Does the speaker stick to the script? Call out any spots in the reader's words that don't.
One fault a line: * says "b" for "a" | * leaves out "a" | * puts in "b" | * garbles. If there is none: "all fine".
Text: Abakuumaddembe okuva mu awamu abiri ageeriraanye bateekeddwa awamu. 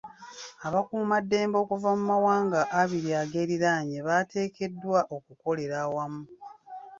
* says "mawanga" for "awamu"
* puts in "okukolera"